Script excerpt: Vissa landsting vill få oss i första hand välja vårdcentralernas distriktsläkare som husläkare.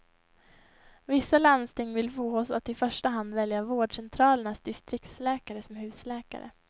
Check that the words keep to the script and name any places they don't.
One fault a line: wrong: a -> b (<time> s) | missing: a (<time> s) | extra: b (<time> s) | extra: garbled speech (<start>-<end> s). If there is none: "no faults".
extra: att (2.5 s)